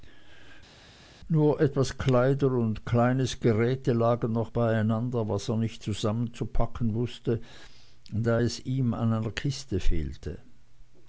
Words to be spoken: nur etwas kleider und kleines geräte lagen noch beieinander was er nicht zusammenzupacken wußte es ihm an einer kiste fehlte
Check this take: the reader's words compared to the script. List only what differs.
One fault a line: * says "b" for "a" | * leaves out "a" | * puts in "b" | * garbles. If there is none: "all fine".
* puts in "da"